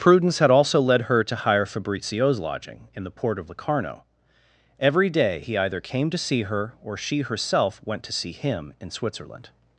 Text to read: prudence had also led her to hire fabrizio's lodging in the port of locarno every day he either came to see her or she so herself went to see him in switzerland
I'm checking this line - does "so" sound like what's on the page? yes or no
no